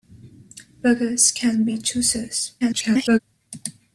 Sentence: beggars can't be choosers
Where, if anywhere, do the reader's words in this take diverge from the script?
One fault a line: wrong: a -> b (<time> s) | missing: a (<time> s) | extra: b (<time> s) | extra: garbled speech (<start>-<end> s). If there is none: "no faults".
extra: garbled speech (2.6-3.2 s)